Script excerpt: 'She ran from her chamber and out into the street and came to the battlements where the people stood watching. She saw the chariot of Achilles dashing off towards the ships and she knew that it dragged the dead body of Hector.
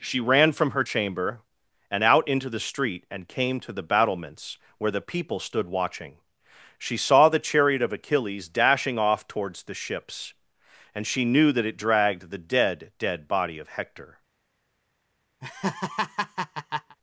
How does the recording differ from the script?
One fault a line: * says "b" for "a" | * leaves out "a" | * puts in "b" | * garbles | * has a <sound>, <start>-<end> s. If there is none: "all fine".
* puts in "dead"
* has a laugh, 15.4-17.0 s